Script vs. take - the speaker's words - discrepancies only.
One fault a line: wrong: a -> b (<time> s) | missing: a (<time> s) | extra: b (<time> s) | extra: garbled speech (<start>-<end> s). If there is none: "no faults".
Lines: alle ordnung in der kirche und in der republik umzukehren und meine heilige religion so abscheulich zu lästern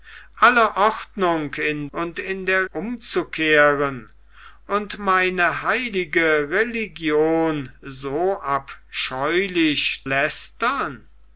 missing: der kirche (1.9 s)
missing: republik (2.7 s)
missing: zu (10.1 s)